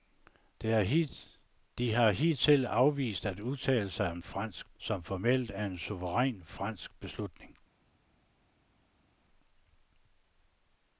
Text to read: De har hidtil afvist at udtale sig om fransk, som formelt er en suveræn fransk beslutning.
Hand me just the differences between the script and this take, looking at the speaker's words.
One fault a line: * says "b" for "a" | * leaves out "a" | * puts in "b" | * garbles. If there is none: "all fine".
all fine